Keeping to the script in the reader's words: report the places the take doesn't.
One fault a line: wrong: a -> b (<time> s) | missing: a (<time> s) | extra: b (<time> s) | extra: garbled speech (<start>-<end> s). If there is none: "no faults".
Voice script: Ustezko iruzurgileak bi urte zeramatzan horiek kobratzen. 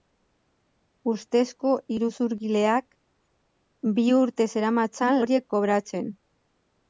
no faults